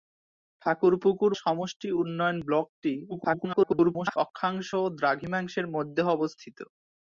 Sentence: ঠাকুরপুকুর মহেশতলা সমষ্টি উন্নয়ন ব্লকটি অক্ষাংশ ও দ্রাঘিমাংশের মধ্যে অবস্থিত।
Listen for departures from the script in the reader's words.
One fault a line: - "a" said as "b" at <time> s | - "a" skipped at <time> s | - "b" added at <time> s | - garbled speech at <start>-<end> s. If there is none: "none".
- "মহেশতলা" skipped at 1.3 s
- garbled speech at 3.1-4.2 s